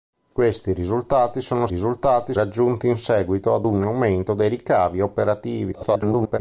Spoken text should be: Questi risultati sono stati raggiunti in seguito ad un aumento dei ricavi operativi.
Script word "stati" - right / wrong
wrong